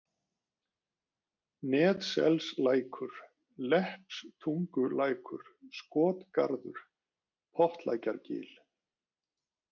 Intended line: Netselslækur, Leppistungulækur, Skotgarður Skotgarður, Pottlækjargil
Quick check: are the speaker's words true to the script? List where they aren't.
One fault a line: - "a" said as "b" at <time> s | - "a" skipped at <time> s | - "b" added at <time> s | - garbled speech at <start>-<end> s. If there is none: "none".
- "Skotgarður" skipped at 6.8 s